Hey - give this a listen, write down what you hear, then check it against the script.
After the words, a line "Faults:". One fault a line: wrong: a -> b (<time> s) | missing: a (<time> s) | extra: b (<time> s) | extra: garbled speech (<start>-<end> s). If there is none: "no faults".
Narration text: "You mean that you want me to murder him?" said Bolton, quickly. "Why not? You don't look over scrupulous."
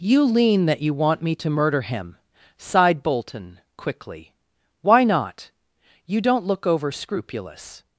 "You lean that you want me to murder him?" sighed Bolton, quickly. "Why not? You don't look over scrupulous."
Faults:
wrong: mean -> lean (0.2 s)
wrong: said -> sighed (2.6 s)